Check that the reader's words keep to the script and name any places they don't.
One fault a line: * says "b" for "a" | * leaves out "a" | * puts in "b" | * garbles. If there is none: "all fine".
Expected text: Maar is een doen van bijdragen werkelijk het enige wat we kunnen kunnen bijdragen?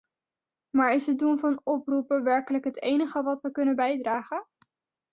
* says "het" for "een"
* says "oproepen" for "bijdragen"
* leaves out "kunnen"